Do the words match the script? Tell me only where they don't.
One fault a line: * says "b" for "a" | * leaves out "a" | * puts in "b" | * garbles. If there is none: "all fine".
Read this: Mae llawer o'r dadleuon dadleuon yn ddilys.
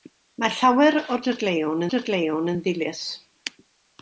all fine